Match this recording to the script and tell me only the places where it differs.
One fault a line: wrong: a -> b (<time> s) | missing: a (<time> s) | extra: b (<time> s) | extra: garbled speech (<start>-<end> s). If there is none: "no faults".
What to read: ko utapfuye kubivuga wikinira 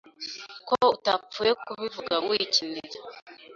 no faults